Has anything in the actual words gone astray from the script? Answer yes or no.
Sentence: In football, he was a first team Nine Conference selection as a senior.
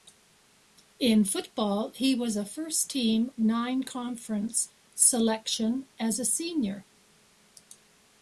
no